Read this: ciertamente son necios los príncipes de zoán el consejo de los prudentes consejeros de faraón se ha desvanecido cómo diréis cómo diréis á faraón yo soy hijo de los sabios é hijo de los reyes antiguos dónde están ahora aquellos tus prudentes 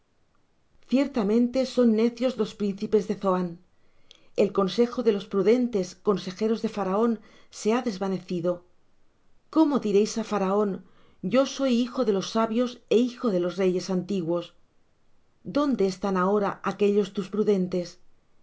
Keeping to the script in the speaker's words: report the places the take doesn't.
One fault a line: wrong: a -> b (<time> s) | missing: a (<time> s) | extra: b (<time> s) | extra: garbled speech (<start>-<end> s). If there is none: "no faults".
missing: cómo diréis (10.1 s)